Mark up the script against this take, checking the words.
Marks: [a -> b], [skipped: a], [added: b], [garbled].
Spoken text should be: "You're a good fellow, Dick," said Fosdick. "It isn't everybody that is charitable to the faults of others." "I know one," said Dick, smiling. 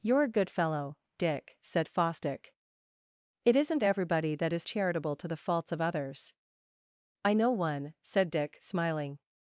"You're a good fellow, Dick," said Fosdick. "It isn't everybody that is charitable to the faults of others." "I know one," said Dick, smiling.